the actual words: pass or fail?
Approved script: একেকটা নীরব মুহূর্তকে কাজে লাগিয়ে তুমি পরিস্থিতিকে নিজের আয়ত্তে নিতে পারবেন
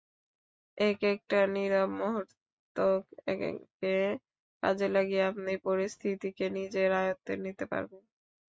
fail